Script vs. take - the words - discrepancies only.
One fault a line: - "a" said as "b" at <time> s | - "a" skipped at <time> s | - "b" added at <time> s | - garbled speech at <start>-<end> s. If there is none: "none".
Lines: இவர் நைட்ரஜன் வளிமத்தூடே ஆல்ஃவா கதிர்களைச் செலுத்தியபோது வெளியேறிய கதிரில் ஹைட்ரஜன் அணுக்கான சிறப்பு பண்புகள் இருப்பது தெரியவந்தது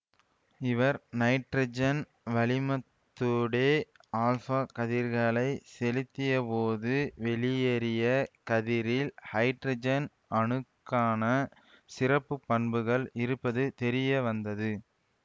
none